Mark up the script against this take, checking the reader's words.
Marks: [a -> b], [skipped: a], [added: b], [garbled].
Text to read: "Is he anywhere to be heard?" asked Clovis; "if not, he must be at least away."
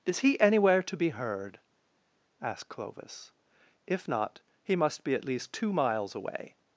"Is he anywhere to be heard?" asked Clovis; "if not, he must be at least [added: two miles] away."